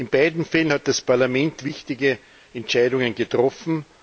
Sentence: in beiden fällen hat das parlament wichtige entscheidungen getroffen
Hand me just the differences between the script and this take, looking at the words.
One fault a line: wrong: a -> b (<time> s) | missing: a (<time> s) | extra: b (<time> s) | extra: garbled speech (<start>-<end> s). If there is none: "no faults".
no faults